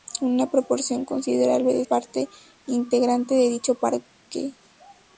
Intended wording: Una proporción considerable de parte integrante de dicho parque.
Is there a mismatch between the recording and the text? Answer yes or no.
no